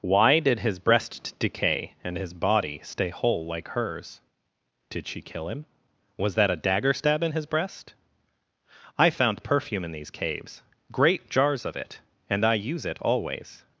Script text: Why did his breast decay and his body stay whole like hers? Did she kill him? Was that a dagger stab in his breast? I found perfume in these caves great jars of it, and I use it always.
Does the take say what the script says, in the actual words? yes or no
yes